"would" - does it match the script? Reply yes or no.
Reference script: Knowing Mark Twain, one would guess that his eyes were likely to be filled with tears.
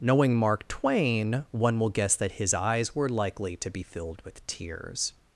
no